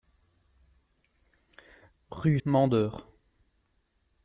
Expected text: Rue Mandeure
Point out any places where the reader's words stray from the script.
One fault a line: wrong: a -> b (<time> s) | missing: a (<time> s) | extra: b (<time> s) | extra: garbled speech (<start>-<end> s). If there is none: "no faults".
no faults